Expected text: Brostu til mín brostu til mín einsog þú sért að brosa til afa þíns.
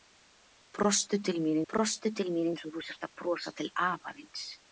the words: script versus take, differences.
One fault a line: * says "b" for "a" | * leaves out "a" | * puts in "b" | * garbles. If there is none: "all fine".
all fine